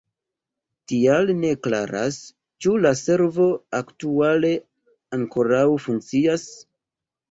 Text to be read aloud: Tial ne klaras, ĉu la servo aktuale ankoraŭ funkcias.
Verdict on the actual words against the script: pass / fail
pass